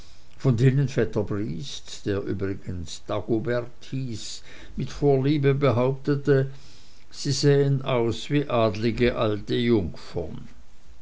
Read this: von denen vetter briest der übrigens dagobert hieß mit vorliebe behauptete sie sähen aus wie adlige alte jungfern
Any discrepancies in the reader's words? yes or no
no